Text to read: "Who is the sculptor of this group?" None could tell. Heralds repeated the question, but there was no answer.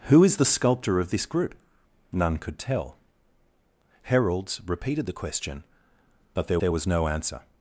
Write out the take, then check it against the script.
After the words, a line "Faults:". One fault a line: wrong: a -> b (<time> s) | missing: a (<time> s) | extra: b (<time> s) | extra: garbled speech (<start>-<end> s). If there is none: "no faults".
"Who is the sculptor of this group?" None could tell. Heralds repeated the question, but there there was no answer.
Faults:
extra: there (6.6 s)